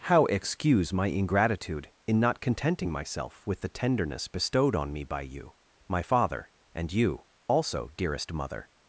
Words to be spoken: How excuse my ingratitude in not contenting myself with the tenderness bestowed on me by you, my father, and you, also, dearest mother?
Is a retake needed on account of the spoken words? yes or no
no